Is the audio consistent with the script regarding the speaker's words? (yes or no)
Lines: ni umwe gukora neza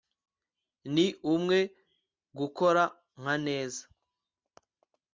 no